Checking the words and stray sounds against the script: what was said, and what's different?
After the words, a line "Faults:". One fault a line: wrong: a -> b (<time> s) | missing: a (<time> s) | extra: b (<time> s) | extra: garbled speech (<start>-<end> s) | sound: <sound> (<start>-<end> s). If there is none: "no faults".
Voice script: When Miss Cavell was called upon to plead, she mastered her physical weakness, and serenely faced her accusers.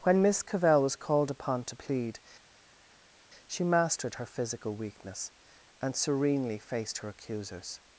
When Miss Cavell was called upon to plead, she mastered her physical weakness, and serenely faced her accusers.
Faults:
no faults